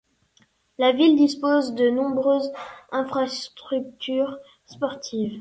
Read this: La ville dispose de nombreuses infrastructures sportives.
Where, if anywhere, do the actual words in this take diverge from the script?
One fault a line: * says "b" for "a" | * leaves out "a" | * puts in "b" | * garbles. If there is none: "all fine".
all fine